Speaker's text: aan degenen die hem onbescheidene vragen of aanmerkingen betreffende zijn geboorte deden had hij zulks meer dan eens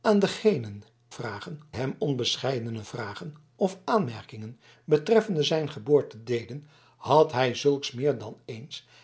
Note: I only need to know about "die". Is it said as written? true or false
false